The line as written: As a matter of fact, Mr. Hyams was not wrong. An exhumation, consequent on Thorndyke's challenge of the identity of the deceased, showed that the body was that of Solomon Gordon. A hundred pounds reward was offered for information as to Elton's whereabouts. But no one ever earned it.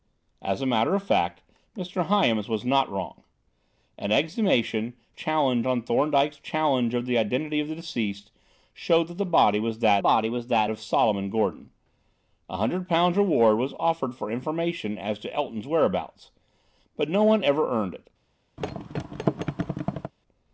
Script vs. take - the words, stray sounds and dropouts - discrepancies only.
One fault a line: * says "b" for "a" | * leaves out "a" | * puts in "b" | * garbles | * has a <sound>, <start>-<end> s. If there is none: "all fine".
* says "challenge" for "consequent"
* puts in "body was that"
* has a thud, 18.6-20.1 s